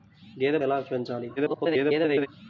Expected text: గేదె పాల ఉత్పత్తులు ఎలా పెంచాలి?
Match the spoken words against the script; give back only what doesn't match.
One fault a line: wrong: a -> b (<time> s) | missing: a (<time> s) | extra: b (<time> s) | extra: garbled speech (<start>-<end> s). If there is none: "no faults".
missing: పాల ఉత్పత్తులు (0.6 s)
extra: garbled speech (1.4-2.3 s)